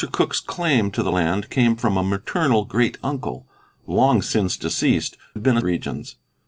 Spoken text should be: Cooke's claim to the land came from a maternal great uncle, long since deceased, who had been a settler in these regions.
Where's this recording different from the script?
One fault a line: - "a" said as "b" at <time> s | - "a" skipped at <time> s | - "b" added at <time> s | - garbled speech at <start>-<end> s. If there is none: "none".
- "who" skipped at 5.2 s
- "settler in these" skipped at 5.6 s